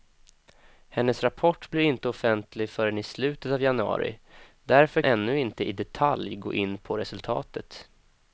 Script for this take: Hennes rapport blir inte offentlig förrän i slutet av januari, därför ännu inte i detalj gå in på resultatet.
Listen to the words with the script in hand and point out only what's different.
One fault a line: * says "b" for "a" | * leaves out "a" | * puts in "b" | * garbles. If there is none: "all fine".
all fine